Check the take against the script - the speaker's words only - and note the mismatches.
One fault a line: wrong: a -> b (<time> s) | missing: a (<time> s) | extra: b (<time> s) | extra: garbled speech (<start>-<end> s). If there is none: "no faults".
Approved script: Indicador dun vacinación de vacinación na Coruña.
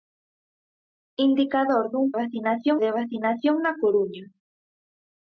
no faults